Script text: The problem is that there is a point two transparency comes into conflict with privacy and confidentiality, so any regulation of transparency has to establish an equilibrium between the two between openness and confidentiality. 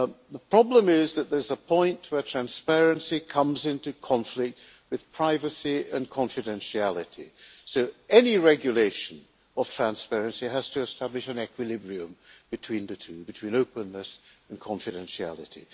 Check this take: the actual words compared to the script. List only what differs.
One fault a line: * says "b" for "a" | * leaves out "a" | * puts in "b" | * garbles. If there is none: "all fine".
* says "where" for "two"